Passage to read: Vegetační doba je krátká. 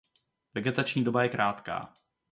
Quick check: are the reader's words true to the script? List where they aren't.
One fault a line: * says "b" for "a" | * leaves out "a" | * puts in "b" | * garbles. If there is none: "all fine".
all fine